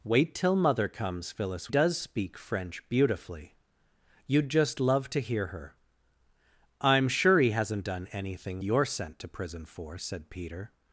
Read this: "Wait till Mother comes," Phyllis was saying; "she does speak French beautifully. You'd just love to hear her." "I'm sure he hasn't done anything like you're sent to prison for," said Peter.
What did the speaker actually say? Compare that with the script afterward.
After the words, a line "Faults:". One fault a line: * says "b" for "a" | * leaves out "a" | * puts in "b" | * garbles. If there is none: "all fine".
"Wait till Mother comes," Phyllis does speak French beautifully. You'd just love to hear her." "I'm sure he hasn't done anything you're sent to prison for," said Peter.
Faults:
* leaves out "was saying she"
* leaves out "like"